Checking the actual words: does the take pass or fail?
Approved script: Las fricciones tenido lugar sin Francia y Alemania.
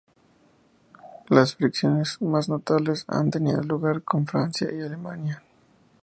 fail